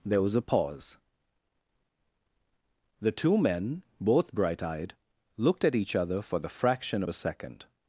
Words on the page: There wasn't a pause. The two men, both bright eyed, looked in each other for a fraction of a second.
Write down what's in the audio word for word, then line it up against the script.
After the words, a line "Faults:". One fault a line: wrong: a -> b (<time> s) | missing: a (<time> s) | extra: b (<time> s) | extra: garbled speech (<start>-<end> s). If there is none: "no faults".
There was a pause. The two men, both bright eyed, looked at each other for the fraction of a second.
Faults:
wrong: wasn't -> was (0.2 s)
wrong: in -> at (5.6 s)
wrong: a -> the (6.4 s)